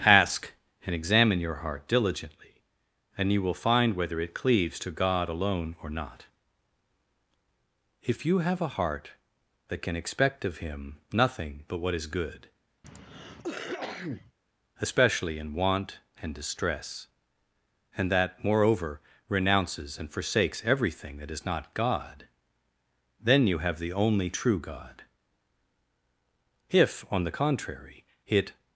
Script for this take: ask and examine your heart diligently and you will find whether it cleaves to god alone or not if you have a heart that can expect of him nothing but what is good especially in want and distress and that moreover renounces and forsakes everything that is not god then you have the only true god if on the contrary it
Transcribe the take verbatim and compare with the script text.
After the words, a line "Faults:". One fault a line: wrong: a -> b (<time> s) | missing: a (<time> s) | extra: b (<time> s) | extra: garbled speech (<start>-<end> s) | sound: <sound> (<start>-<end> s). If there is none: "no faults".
ask and examine your heart diligently and you will find whether it cleaves to god alone or not if you have a heart that can expect of him nothing but what is good especially in want and distress and that moreover renounces and forsakes everything that is not god then you have the only true god if on the contrary it
Faults:
sound: cough (12.8-14.3 s)